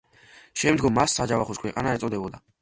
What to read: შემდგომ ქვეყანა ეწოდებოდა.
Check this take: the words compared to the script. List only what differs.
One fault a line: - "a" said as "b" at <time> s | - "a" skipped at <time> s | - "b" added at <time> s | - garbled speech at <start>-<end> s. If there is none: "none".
- "მას საჯავახოს" added at 1.0 s